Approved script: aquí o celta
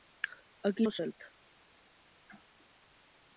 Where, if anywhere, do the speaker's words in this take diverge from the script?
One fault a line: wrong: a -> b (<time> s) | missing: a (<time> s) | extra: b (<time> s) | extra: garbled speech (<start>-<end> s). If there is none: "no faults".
no faults